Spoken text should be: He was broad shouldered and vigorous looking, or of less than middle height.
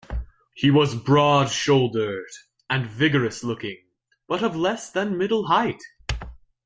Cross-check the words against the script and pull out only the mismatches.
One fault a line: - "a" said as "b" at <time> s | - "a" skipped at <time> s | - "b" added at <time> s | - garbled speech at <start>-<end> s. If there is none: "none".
- "or" said as "but" at 4.3 s